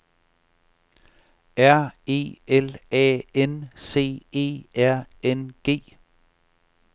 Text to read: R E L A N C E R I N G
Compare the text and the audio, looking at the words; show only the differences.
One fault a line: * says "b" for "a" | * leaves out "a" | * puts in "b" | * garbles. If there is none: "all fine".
* leaves out "I"